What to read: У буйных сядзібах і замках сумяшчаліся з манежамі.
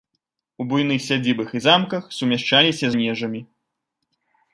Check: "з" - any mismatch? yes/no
yes